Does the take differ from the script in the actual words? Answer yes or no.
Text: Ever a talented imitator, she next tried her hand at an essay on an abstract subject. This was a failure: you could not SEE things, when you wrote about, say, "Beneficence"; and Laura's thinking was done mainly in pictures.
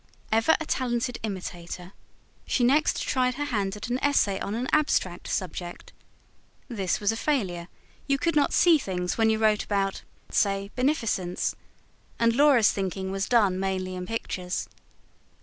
no